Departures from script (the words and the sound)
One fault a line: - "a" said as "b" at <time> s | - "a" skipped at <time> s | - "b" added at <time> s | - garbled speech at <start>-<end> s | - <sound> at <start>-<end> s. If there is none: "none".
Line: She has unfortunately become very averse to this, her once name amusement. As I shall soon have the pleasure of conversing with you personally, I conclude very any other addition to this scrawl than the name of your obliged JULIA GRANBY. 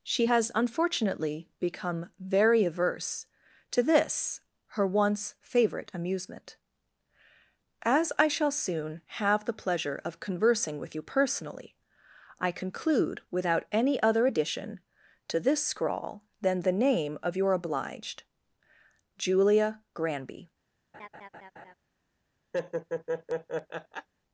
- "name" said as "favorite" at 5.4 s
- "very" said as "without" at 13.3 s
- laugh at 20.9-21.7 s
- laugh at 22.5-24.1 s